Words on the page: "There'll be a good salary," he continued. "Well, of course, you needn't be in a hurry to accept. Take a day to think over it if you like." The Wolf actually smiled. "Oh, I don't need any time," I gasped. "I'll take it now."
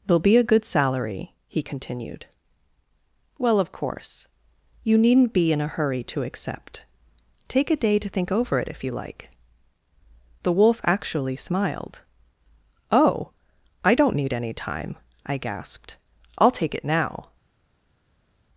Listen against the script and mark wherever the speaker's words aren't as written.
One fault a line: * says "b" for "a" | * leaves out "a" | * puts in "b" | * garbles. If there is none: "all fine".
all fine